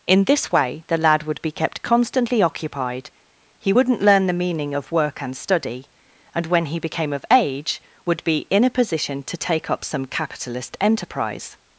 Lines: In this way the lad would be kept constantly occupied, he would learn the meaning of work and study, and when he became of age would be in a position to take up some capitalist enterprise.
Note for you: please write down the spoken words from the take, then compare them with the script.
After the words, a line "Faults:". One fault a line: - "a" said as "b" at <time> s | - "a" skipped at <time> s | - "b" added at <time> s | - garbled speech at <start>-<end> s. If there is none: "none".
In this way the lad would be kept constantly occupied, he wouldn't learn the meaning of work and study, and when he became of age would be in a position to take up some capitalist enterprise.
Faults:
- "would" said as "wouldn't" at 3.7 s